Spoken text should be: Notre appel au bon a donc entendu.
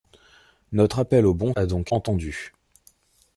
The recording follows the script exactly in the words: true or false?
true